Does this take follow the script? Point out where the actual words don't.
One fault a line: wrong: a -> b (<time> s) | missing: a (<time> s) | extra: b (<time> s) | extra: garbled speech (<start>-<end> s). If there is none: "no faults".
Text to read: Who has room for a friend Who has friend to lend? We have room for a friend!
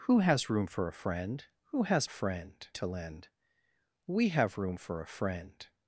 no faults